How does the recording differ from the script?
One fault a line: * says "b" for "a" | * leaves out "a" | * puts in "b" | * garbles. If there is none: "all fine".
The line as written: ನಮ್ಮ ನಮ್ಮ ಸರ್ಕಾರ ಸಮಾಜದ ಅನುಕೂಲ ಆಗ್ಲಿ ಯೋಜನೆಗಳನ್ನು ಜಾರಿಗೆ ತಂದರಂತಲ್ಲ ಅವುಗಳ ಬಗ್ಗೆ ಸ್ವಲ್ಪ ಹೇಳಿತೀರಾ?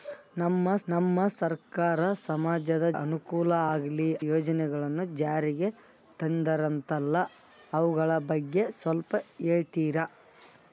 all fine